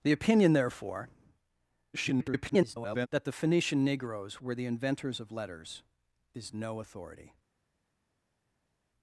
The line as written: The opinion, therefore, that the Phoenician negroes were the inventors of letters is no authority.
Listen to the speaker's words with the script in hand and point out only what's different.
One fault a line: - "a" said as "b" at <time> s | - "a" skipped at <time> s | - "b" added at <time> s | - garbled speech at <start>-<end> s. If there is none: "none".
- garbled speech at 1.9-3.1 s